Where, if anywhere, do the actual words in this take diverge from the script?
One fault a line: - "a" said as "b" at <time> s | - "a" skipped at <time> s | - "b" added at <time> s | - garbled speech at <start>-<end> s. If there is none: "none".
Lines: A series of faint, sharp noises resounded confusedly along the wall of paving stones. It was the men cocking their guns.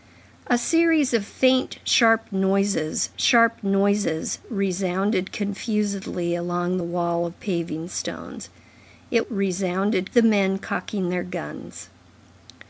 - "sharp noises" added at 3.2 s
- "was" said as "resounded" at 9.3 s